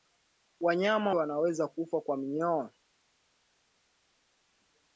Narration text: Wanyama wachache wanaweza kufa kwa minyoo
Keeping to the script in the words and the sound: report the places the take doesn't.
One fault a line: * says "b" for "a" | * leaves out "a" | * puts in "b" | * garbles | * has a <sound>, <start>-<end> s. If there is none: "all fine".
* leaves out "wachache"